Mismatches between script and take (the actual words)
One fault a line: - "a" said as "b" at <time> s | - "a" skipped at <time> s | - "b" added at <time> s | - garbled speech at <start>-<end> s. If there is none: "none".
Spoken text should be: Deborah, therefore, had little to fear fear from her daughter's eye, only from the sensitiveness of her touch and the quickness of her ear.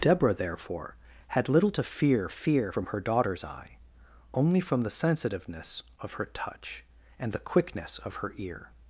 none